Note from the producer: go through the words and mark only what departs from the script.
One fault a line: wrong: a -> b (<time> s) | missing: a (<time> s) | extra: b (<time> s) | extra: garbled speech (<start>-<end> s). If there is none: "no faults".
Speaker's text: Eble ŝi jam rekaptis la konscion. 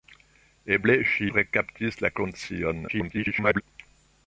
missing: jam (1.3 s)
extra: garbled speech (2.9-3.6 s)